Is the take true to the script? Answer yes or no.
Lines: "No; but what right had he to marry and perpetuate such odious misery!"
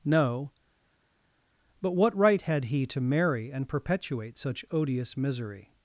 yes